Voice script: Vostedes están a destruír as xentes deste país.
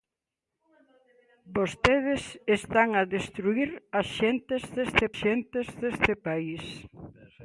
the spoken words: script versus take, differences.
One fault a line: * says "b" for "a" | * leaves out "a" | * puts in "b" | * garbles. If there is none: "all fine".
* puts in "xentes deste"